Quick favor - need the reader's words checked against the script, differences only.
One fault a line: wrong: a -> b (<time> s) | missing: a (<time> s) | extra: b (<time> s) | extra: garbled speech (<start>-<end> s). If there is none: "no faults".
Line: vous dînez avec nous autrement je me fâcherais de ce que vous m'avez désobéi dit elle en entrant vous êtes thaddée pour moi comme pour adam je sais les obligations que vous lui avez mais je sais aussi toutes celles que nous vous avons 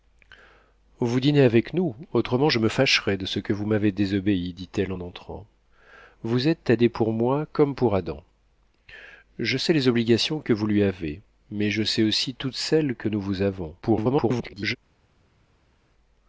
extra: garbled speech (13.8-14.8 s)